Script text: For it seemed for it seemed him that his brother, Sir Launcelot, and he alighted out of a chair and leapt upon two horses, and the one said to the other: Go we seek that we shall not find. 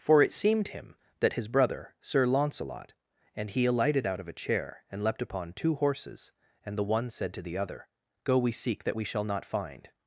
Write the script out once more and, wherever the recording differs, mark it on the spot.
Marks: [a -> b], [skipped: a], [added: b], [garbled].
For it seemed [skipped: for it seemed] him that his brother, Sir Launcelot, and he alighted out of a chair and leapt upon two horses, and the one said to the other: Go we seek that we shall not find.